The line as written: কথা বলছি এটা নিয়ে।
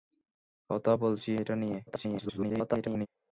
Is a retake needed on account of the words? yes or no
yes